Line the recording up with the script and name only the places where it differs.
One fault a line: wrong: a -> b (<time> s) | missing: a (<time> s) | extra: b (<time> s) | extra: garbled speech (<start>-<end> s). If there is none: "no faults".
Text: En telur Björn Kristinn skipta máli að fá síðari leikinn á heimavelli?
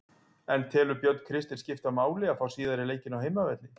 no faults